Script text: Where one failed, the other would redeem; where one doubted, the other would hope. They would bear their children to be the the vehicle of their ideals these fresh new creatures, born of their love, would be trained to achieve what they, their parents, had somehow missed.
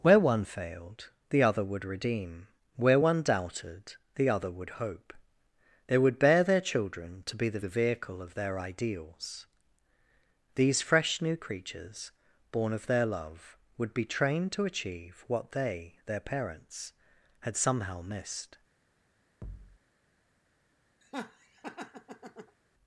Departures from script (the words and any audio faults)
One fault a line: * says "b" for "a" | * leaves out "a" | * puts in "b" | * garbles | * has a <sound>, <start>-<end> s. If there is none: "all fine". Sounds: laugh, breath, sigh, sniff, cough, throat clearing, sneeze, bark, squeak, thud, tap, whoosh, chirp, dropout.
* has a thud, 19.4-19.8 s
* has a laugh, 21.0-22.6 s